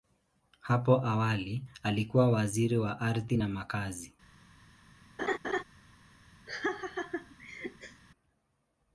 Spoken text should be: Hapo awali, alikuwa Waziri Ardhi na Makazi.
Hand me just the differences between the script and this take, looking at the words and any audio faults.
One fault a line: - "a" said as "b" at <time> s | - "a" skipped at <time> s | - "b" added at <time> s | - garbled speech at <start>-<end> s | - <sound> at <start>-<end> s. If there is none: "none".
- "wa" added at 2.8 s
- laugh at 5.2-5.6 s
- laugh at 6.5-8.0 s